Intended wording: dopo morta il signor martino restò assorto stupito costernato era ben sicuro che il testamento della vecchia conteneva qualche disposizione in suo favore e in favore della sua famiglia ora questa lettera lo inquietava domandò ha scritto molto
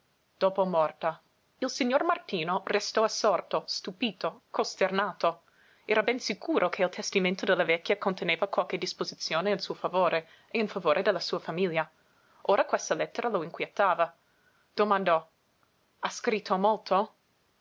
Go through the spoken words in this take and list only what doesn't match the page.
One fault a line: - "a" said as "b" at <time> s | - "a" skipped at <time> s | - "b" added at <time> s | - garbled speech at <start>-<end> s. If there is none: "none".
none